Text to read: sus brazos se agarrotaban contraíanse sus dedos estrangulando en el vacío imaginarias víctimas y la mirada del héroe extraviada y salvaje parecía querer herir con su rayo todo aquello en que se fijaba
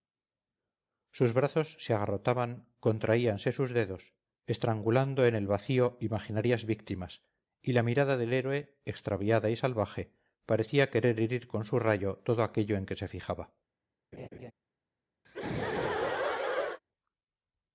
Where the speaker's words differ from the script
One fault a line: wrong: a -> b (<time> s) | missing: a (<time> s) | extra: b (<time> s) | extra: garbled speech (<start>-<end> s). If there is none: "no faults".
no faults